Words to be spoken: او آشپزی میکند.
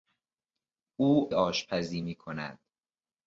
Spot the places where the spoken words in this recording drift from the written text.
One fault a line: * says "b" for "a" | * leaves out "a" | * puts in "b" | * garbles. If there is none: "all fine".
all fine